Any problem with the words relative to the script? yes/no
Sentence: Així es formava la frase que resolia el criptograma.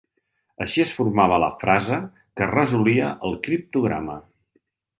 no